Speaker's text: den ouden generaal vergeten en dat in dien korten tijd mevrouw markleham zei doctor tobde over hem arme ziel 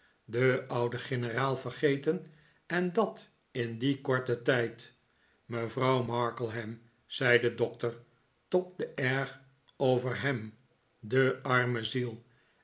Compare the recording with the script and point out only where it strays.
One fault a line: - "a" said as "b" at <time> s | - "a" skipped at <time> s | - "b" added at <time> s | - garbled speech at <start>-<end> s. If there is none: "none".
- "de" added at 7.4 s
- "erg" added at 8.9 s
- "de" added at 11.0 s